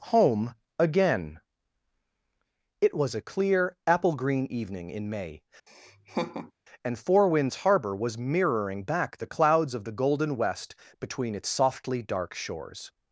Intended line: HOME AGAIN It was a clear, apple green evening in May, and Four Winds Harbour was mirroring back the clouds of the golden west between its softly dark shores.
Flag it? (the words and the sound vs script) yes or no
yes